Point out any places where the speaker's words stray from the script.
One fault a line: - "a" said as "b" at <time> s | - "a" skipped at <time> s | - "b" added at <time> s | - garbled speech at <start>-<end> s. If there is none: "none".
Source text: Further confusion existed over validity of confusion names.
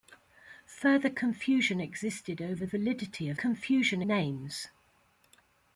none